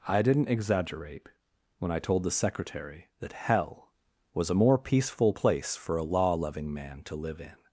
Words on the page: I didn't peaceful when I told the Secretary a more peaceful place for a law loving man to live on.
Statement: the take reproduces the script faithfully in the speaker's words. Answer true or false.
false